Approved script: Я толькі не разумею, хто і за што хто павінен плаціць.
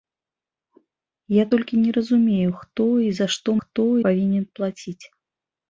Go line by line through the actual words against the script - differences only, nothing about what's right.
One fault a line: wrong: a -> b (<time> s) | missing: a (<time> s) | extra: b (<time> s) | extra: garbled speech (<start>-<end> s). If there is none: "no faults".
no faults